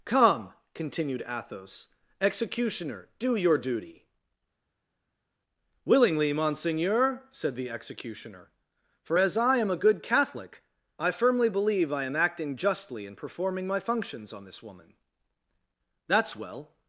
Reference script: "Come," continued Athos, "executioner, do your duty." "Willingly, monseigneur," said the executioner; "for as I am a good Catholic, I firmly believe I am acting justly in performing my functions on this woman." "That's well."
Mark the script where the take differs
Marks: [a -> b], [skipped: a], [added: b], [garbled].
"Come," continued Athos, "executioner, do your duty." "Willingly, monseigneur," said the executioner; "for as I am a good Catholic, I firmly believe I am acting justly in performing my functions on this woman." "That's well."